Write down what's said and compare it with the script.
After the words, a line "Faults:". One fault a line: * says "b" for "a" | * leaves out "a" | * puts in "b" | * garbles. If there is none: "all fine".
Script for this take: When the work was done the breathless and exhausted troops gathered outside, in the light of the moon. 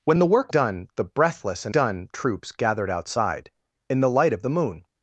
When the work done the breathless and done troops gathered outside, in the light of the moon.
Faults:
* leaves out "was"
* says "done" for "exhausted"